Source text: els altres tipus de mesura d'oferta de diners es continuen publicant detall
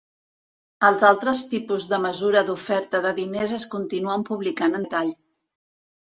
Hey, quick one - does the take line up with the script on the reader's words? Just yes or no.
yes